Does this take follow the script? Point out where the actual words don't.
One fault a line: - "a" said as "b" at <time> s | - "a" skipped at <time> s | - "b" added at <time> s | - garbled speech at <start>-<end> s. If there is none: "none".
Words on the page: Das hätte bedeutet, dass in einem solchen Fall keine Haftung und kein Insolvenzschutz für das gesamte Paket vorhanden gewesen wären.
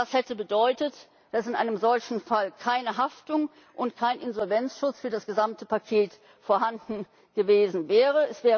none